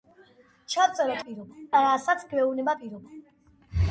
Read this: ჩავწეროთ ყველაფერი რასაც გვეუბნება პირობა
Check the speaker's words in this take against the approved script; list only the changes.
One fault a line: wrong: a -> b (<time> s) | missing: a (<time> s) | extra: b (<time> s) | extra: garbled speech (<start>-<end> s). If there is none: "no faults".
wrong: ყველაფერი -> პირობა (1.2 s)